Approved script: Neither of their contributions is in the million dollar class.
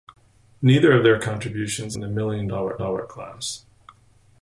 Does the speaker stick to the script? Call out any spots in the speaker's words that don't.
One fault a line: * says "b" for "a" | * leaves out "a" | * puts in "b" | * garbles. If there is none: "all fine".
* leaves out "is"
* puts in "dollar"